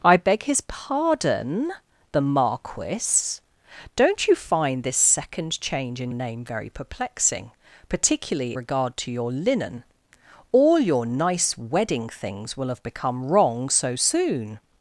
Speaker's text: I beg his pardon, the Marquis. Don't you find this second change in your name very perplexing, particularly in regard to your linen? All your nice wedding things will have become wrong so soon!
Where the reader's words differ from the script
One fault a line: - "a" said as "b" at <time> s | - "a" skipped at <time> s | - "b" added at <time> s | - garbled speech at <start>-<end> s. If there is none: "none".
- "your" skipped at 6.1 s
- "in" skipped at 8.6 s